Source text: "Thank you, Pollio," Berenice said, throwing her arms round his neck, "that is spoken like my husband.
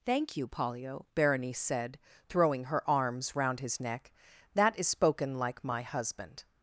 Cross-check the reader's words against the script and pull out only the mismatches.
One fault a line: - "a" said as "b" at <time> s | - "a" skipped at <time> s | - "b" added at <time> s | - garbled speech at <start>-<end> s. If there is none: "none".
none